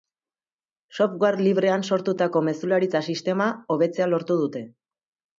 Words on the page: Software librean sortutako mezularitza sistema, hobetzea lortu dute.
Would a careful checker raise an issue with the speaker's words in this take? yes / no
no